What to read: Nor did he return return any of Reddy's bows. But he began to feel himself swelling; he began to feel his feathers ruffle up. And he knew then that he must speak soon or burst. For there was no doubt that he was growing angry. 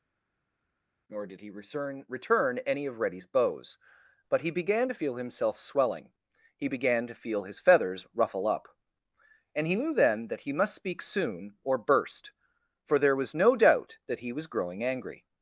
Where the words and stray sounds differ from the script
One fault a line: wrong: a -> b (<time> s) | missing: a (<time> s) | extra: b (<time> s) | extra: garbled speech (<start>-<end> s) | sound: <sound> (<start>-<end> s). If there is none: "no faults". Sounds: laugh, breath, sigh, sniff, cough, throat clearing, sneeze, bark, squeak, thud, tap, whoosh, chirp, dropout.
no faults